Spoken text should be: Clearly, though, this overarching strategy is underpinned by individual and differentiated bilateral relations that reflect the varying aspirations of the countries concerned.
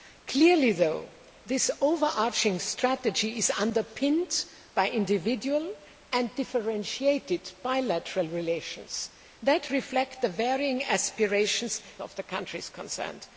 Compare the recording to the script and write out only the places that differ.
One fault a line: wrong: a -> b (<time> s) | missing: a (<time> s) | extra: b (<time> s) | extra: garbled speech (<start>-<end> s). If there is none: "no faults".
no faults